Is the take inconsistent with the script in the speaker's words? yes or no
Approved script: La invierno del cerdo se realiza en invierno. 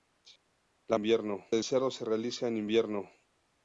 no